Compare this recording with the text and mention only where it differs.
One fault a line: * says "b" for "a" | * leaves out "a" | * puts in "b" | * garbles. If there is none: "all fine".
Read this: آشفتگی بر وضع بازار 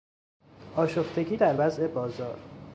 * says "در" for "بر"